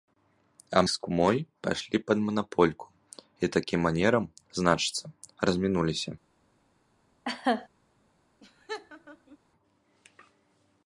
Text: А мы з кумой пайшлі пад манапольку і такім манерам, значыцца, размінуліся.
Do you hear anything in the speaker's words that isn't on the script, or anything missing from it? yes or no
yes